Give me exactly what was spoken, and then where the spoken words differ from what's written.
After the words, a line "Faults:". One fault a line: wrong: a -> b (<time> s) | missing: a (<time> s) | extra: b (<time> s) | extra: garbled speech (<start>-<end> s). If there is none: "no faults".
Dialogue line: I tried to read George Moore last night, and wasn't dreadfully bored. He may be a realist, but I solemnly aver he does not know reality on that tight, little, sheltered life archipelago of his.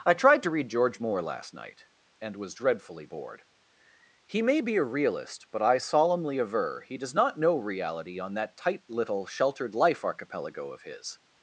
I tried to read George Moore last night, and was dreadfully bored. He may be a realist, but I solemnly aver he does not know reality on that tight, little, sheltered life archipelago of his.
Faults:
wrong: wasn't -> was (2.4 s)